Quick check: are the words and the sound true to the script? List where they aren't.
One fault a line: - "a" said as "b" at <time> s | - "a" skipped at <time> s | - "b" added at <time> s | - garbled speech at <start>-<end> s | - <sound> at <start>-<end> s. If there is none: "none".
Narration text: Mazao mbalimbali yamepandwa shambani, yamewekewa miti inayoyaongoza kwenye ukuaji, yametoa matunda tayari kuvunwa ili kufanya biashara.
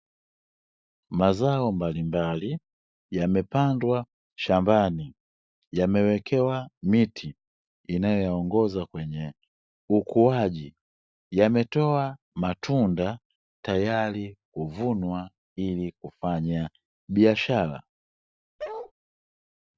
- bark at 18.6-18.9 s